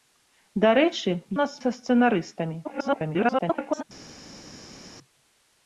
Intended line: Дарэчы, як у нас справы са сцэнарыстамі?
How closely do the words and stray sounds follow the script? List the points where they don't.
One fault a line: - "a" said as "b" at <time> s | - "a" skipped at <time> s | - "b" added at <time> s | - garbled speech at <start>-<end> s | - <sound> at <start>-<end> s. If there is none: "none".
- "як" skipped at 1.1 s
- "справы" skipped at 1.6 s
- garbled speech at 2.6-3.8 s